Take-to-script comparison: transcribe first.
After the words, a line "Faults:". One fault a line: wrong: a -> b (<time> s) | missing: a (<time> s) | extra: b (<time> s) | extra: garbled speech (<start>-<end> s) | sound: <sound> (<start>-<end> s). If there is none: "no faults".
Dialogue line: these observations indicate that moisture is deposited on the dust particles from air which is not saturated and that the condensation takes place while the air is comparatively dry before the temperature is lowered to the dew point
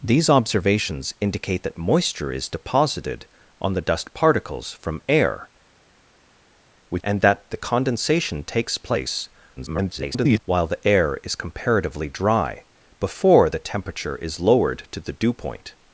these observations indicate that moisture is deposited on the dust particles from air which and that the condensation takes place [garbled] while the air is comparatively dry before the temperature is lowered to the dew point
Faults:
missing: is not saturated (7.0 s)
extra: garbled speech (9.6-10.4 s)